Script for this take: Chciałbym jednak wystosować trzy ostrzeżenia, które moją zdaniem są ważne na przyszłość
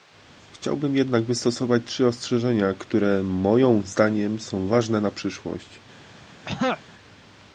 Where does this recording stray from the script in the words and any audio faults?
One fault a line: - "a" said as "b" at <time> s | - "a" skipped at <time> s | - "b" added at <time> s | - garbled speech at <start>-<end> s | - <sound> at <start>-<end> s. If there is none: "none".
- throat clearing at 6.4-6.8 s